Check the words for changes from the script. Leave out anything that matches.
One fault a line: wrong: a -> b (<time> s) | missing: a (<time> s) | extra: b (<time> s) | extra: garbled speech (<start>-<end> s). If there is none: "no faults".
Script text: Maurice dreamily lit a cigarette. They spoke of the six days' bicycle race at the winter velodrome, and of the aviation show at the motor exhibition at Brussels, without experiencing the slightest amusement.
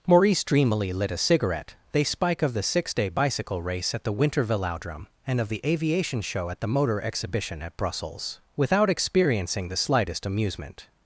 wrong: spoke -> spike (2.0 s)
wrong: days -> day (2.9 s)